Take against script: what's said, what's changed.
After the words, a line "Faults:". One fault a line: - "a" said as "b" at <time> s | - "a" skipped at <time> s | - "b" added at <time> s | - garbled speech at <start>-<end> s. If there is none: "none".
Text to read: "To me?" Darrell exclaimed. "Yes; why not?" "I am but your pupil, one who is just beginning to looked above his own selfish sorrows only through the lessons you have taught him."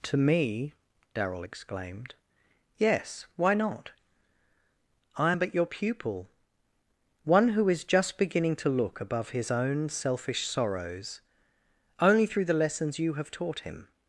"To me?" Darrell exclaimed. "Yes; why not?" "I am but your pupil, one who is just beginning to look above his own selfish sorrows only through the lessons you have taught him."
Faults:
- "looked" said as "look" at 8.7 s